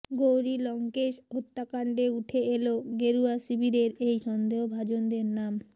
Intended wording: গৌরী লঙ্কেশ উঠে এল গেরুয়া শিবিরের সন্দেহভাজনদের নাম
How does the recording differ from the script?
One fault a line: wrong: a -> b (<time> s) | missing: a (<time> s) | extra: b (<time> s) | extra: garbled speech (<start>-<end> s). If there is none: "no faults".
extra: হত্যাকাণ্ডে (1.3 s)
extra: এই (4.1 s)